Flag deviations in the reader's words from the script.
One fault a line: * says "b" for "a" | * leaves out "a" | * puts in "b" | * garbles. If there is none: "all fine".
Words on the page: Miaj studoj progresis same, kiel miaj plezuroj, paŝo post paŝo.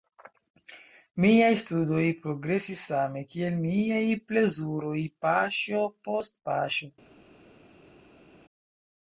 all fine